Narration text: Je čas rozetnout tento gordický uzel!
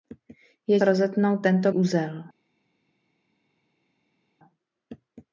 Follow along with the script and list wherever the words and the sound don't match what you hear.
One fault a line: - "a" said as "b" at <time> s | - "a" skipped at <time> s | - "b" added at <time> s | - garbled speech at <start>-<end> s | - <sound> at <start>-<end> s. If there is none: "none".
- "čas" skipped at 0.8 s
- "gordický" skipped at 1.7 s